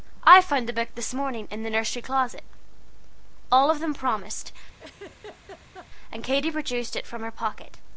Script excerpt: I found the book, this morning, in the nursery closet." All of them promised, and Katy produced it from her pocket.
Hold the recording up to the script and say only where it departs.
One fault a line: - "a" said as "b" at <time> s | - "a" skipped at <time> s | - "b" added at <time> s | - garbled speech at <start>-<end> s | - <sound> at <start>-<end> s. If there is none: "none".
- laugh at 4.8-5.9 s